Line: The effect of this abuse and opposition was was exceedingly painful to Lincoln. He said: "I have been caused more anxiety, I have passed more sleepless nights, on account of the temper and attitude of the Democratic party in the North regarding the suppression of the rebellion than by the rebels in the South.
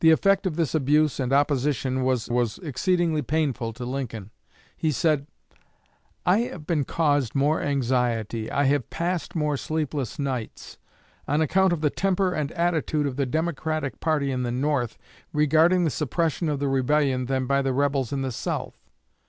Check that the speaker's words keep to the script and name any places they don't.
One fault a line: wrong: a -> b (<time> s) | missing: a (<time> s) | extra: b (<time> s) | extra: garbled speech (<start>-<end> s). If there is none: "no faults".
no faults